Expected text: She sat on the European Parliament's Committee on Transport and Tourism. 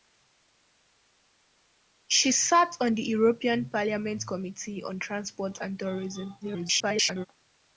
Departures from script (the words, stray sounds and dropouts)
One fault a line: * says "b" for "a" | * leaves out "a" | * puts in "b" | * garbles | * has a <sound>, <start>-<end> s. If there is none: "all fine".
* garbles